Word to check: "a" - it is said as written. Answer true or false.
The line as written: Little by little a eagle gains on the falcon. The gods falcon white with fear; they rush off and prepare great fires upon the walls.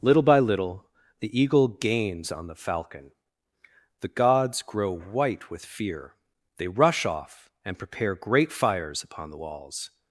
false